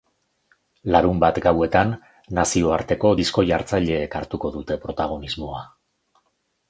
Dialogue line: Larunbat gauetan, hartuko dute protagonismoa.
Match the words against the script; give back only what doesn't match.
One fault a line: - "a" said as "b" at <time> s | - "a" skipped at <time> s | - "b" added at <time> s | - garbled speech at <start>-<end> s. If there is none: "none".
- "nazioarteko disko jartzaileek" added at 2.4 s